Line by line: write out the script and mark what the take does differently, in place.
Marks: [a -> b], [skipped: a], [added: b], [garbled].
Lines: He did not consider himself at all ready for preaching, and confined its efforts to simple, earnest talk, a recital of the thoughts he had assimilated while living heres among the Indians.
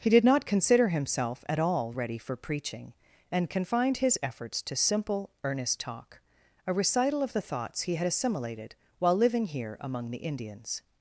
He did not consider himself at all ready for preaching, and confined [its -> his] efforts to simple, earnest talk, a recital of the thoughts he had assimilated while living [heres -> here] among the Indians.